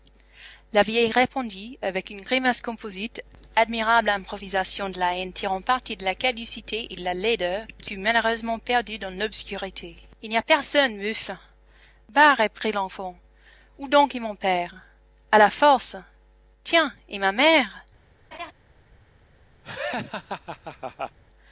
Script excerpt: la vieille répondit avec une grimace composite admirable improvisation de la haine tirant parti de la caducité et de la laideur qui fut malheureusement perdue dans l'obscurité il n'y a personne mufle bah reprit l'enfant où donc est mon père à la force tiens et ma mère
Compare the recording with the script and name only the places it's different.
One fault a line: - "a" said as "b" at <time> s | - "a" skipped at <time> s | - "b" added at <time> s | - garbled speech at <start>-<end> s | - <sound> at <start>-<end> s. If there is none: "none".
- laugh at 18.3-18.5 s
- laugh at 19.6-21.2 s